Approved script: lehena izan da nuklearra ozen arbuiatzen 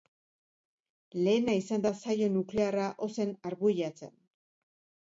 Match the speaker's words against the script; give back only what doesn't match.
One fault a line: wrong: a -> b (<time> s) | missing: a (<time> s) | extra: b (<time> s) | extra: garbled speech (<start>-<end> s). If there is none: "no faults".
extra: saio (2.1 s)